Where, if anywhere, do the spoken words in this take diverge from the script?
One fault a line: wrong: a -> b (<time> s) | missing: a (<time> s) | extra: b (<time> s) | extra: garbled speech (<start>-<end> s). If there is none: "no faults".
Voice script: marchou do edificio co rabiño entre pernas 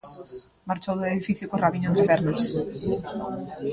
no faults